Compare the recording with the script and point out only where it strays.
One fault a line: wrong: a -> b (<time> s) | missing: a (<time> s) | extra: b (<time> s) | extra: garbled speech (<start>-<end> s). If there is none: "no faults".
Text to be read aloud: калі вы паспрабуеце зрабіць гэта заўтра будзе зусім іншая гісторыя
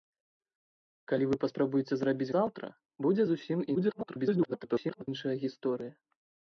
missing: гэта (2.3 s)
extra: garbled speech (3.7-5.1 s)